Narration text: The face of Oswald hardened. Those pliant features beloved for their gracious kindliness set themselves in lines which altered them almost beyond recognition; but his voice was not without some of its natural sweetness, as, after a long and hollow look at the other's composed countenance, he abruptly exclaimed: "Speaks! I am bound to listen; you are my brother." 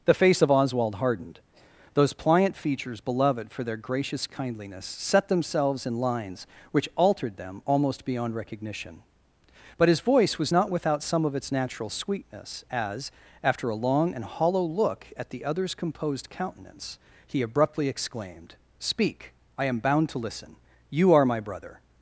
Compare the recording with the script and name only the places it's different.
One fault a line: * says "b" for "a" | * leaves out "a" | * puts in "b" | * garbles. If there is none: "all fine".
* says "Speak" for "Speaks"